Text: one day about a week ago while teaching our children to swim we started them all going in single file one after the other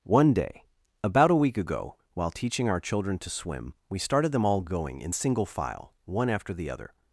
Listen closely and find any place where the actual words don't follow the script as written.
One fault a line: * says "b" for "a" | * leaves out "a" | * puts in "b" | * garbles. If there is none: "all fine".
all fine